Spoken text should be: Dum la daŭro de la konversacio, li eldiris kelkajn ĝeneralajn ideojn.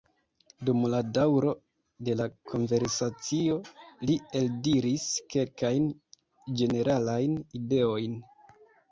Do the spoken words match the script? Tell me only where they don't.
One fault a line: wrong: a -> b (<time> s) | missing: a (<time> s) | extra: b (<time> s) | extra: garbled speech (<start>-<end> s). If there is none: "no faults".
no faults